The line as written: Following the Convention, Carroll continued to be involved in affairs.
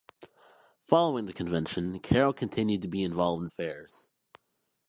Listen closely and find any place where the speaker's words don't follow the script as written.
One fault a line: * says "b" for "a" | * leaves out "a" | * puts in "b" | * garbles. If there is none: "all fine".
all fine